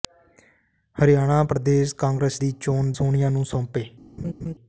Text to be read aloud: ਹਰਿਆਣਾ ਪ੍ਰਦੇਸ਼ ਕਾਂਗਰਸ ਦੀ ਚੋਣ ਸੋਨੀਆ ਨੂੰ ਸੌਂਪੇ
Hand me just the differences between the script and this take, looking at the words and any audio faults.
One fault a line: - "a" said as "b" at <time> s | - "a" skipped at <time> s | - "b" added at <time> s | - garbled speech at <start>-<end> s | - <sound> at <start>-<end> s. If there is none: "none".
- laugh at 4.2-4.5 s